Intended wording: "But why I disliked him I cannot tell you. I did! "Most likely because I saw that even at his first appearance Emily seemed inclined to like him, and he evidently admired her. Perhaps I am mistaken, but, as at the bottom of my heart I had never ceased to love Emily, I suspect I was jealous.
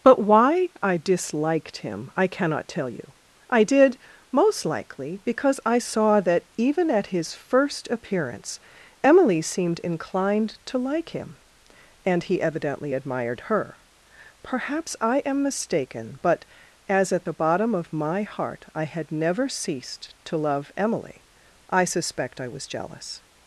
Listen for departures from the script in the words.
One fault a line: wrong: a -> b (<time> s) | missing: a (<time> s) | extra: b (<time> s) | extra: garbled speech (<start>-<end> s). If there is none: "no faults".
no faults